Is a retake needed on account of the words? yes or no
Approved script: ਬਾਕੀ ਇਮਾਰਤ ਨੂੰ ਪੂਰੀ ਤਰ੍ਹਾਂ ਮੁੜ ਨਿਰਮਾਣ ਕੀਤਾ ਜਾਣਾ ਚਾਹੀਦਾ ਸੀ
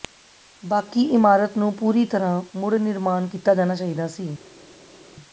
no